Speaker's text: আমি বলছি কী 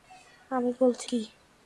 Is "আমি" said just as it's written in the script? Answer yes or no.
yes